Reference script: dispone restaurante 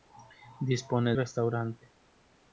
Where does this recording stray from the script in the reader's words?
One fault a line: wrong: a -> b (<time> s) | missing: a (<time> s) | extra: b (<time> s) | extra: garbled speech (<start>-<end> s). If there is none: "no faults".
no faults